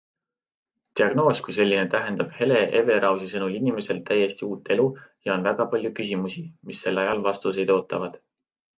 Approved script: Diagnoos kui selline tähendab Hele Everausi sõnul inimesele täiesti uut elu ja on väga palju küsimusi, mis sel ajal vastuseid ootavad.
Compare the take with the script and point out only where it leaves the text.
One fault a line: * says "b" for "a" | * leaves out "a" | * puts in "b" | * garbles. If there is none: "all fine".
all fine